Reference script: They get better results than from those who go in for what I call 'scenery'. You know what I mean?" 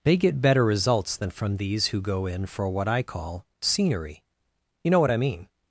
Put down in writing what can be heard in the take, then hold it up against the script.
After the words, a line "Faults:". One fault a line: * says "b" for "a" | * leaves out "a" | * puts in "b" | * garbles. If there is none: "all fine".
They get better results than from these who go in for what I call 'scenery'. You know what I mean?"
Faults:
* says "these" for "those"